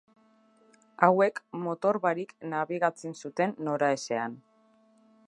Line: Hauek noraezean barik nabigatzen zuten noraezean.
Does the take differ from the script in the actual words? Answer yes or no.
yes